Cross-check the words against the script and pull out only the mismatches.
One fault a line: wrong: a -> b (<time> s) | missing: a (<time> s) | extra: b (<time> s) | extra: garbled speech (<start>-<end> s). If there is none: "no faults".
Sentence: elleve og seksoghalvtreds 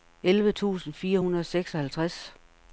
extra: tusind fire hundrede (0.5 s)